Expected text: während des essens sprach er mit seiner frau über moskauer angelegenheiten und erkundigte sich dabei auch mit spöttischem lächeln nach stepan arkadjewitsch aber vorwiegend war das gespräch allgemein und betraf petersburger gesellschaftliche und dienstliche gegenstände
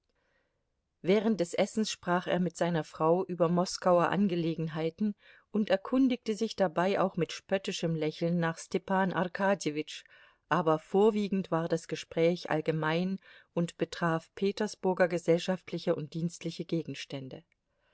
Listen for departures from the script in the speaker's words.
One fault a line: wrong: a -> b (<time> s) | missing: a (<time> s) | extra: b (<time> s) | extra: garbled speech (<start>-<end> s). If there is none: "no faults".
no faults